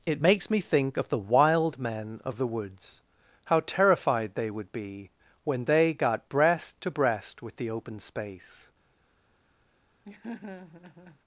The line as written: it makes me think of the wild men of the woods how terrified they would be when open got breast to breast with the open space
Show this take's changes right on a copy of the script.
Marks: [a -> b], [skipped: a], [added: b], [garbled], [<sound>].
it makes me think of the wild men of the woods how terrified they would be when [open -> they] got breast to breast with the open space [laugh]